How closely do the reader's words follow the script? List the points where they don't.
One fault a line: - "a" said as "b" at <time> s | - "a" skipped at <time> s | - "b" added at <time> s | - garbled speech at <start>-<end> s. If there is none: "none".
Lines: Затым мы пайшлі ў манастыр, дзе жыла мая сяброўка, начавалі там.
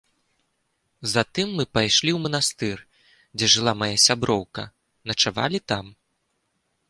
none